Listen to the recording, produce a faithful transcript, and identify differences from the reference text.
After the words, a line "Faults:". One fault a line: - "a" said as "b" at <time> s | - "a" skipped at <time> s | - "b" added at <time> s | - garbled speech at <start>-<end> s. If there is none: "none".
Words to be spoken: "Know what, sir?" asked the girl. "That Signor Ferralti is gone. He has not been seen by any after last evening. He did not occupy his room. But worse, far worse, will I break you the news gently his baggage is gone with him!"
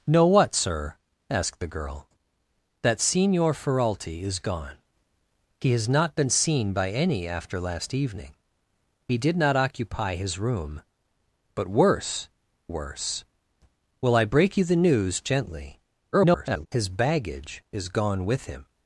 "Know what, sir?" asked the girl. "That Signor Ferralti is gone. He has not been seen by any after last evening. He did not occupy his room. But worse, worse, will I break you the news gently [garbled] his baggage is gone with him!"
Faults:
- "far" skipped at 12.3 s
- garbled speech at 16.1-16.7 s